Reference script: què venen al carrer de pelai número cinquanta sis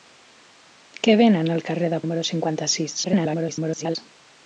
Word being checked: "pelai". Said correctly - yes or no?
no